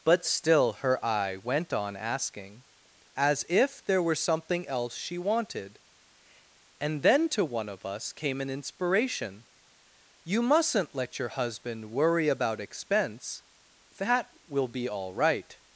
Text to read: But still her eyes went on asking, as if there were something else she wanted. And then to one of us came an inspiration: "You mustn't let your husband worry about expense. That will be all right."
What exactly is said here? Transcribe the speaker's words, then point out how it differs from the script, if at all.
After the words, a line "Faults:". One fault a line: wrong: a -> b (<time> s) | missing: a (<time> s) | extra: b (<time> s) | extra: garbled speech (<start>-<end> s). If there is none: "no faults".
But still her eye went on asking, as if there were something else she wanted. And then to one of us came an inspiration: "You mustn't let your husband worry about expense. That will be all right."
Faults:
wrong: eyes -> eye (1.1 s)